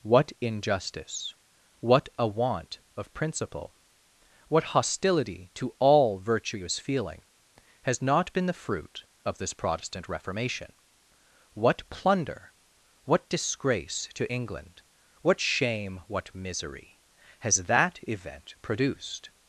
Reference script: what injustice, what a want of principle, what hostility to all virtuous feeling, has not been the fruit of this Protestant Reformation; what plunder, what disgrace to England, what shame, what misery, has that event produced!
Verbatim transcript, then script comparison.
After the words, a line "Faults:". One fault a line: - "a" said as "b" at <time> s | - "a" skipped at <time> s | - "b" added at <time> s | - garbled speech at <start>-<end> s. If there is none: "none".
what injustice, what a want of principle, what hostility to all virtuous feeling, has not been the fruit of this Protestant Reformation; what plunder, what disgrace to England, what shame, what misery, has that event produced!
Faults:
none